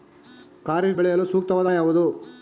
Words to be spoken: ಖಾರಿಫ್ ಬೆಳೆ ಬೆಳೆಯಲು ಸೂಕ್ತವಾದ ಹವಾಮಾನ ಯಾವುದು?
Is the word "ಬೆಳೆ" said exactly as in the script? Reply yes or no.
no